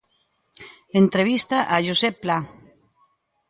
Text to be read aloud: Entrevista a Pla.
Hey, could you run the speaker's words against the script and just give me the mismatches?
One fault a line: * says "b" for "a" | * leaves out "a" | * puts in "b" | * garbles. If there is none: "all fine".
* puts in "Josep"